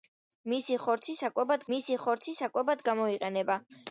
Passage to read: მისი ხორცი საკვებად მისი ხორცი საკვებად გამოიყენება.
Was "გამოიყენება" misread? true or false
false